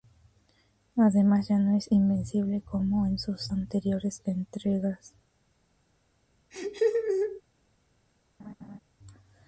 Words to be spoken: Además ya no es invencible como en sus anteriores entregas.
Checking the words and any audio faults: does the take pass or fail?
fail